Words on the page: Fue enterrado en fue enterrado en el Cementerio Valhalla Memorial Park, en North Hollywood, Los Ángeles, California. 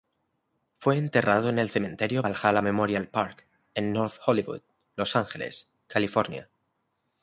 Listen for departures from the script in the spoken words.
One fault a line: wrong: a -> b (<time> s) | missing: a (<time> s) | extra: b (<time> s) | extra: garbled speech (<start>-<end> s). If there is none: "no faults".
missing: fue enterrado en (1.6 s)